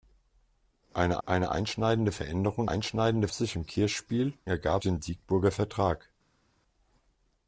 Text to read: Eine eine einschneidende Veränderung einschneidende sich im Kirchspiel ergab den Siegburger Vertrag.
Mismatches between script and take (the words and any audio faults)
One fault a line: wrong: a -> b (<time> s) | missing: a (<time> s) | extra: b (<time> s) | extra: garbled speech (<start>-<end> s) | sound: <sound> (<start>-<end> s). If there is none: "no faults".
no faults